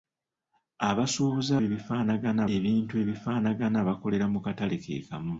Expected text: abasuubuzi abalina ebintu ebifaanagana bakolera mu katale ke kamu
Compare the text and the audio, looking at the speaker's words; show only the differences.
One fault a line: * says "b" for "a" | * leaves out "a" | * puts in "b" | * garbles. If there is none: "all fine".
* says "ebifaanagana" for "abalina"